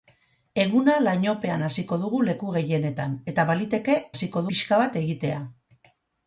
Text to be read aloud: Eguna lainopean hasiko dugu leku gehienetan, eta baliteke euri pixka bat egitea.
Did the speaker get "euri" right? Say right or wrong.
wrong